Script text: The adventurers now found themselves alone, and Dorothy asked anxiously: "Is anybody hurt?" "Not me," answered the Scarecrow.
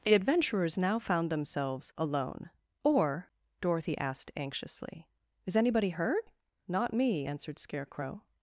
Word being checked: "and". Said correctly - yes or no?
no